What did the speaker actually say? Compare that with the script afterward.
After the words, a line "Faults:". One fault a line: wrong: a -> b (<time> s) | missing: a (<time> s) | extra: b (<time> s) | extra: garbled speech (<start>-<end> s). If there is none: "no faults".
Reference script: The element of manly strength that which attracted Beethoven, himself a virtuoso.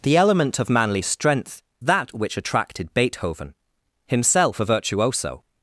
The element of manly strength that which attracted Beethoven, himself a virtuoso.
Faults:
no faults